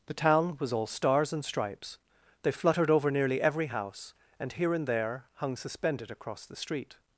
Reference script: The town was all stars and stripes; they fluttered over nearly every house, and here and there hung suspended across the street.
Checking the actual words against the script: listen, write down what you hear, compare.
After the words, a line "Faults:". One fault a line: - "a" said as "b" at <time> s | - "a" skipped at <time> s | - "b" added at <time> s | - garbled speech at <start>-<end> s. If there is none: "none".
The town was all stars and stripes; they fluttered over nearly every house, and here and there hung suspended across the street.
Faults:
none